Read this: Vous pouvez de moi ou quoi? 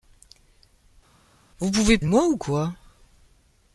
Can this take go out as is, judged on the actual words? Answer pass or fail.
pass